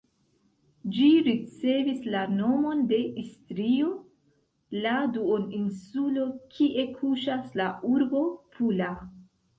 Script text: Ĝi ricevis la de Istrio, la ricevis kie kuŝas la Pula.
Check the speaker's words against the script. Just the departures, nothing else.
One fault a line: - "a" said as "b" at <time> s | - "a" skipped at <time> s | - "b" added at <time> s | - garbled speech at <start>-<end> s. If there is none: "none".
- "nomon" added at 2.4 s
- "ricevis" said as "duoninsulo" at 5.2 s
- "urbo" added at 7.9 s